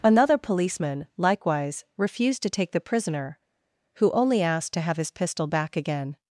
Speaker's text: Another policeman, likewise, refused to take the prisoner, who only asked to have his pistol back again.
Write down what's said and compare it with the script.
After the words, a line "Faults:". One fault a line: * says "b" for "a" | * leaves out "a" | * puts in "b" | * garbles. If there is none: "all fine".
Another policeman, likewise, refused to take the prisoner, who only asked to have his pistol back again.
Faults:
all fine